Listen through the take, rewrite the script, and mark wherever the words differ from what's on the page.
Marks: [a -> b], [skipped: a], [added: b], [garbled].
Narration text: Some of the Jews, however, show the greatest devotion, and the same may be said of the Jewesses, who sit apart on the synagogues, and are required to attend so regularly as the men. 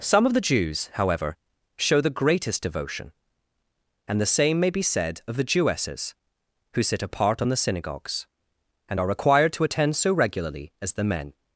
Some of the Jews, however, show the greatest devotion, and the same may be said of the Jewesses, who sit apart on the synagogues, and are required to attend so regularly as the men.